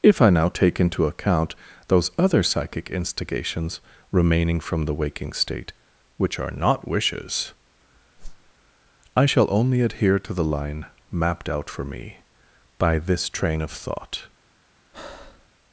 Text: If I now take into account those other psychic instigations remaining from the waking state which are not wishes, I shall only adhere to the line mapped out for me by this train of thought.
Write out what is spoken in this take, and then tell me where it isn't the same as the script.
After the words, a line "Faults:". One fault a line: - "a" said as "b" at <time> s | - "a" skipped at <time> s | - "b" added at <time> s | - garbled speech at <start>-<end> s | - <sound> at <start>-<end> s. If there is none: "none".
If I now take into account those other psychic instigations remaining from the waking state which are not wishes, I shall only adhere to the line mapped out for me by this train of thought.
Faults:
- whoosh at 8.2-8.5 s
- breath at 14.9-15.5 s